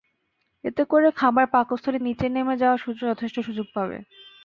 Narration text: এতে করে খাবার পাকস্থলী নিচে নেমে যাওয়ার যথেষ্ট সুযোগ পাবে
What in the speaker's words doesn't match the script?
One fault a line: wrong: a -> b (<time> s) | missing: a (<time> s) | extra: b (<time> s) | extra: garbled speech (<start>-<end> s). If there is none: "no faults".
no faults